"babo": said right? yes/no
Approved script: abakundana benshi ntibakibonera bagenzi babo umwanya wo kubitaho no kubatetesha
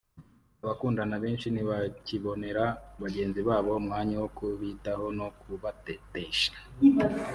yes